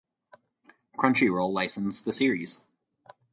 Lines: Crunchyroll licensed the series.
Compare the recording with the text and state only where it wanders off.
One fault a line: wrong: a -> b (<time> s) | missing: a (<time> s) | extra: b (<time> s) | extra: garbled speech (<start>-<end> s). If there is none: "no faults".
no faults